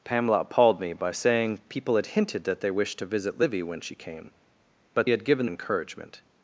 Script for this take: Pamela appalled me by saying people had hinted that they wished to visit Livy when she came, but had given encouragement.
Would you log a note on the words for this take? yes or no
no